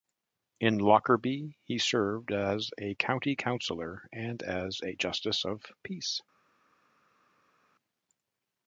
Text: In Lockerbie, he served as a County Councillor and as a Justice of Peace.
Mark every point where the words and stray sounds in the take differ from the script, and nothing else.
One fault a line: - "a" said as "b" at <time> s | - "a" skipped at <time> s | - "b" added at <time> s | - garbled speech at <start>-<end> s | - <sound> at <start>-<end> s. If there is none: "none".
none